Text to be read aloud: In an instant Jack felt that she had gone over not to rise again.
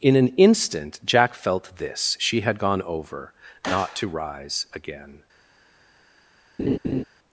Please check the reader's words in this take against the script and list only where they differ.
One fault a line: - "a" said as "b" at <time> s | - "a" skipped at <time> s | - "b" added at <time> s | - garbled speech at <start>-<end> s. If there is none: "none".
- "that" said as "this" at 1.8 s